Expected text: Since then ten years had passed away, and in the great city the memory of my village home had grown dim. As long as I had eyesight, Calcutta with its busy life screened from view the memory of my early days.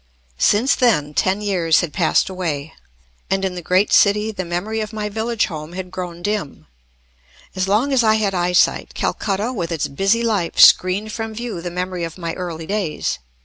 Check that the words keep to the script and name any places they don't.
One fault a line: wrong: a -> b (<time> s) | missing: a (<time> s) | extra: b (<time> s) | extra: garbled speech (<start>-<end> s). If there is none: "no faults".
no faults